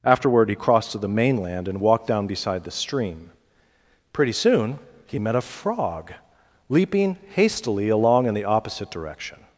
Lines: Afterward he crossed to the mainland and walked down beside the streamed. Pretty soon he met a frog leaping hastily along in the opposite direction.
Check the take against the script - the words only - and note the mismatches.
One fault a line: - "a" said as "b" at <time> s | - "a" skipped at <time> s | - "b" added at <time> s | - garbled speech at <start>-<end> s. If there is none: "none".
- "streamed" said as "stream" at 2.7 s